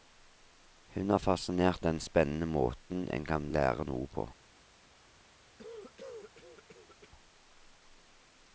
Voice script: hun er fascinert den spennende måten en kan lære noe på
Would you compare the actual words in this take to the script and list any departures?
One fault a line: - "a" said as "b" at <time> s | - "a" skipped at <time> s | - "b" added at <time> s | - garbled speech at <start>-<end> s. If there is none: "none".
none